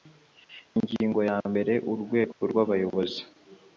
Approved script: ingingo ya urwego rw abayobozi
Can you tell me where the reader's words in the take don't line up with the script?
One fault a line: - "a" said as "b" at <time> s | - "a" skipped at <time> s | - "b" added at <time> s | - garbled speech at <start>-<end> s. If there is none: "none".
- "mbere" added at 1.5 s